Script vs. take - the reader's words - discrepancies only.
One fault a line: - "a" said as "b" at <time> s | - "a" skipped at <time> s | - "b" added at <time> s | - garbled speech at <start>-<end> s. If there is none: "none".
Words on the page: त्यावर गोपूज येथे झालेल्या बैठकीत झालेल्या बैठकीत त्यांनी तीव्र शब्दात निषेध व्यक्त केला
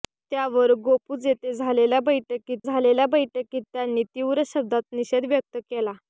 none